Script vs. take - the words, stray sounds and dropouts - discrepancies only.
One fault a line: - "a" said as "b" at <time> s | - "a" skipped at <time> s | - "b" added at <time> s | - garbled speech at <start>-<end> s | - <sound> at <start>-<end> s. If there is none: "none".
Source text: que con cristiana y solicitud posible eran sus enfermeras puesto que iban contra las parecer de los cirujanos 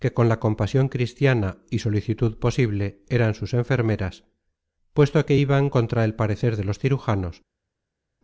- "la compasion" added at 0.3 s
- "las" said as "el" at 6.0 s